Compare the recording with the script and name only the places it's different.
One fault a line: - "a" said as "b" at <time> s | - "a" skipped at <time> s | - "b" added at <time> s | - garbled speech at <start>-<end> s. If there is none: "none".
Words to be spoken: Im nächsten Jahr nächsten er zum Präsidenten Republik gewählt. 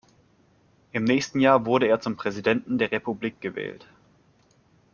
- "nächsten" said as "wurde" at 1.7 s
- "der" added at 2.8 s